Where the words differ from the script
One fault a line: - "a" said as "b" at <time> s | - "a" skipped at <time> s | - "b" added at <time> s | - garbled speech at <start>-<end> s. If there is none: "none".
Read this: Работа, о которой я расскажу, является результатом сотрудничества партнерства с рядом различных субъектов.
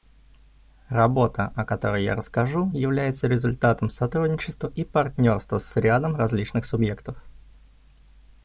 - "и" added at 4.7 s